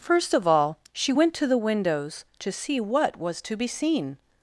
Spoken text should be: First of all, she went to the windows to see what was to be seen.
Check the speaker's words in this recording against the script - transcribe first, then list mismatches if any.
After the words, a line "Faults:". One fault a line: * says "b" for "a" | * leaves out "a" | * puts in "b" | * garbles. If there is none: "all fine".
First of all, she went to the windows to see what was to be seen.
Faults:
all fine